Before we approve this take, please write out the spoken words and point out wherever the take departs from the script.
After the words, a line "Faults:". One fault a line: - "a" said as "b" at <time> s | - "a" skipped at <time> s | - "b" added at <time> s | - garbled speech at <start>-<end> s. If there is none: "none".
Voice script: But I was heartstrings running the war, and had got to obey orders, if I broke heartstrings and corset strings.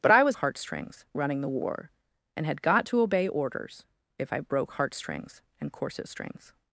But I was heartstrings running the war, and had got to obey orders, if I broke heartstrings and corset strings.
Faults:
none